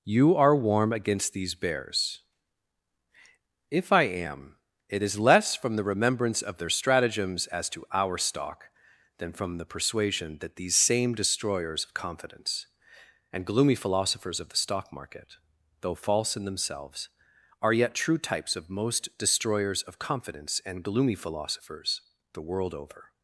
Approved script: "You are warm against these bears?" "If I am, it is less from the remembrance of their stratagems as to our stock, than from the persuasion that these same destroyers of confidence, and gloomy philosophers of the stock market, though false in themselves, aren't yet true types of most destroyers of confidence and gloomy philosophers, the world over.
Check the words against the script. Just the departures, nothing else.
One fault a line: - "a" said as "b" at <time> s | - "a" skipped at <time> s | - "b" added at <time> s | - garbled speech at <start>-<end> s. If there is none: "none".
- "aren't" said as "are" at 17.6 s